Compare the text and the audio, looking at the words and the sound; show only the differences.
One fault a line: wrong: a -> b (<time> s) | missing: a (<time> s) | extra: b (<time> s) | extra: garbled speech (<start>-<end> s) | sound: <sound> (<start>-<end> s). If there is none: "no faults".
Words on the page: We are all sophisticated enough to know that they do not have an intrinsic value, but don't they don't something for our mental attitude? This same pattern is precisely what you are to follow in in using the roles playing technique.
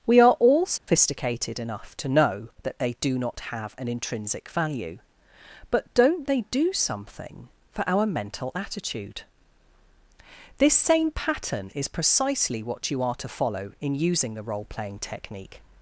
sound: dropout (0.8-0.9 s)
wrong: don't -> do (6.5 s)
missing: in (13.9 s)
wrong: roles -> role (14.4 s)